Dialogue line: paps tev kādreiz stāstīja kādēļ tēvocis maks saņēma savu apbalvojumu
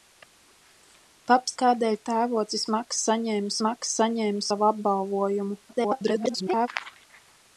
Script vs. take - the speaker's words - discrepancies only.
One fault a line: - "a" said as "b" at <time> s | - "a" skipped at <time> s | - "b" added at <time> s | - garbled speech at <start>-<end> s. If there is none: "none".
- "tev kādreiz stāstīja kādēļ tēvocis" said as "kādēļ tēvocis maks saņēma" at 1.6 s
- garbled speech at 5.7-6.7 s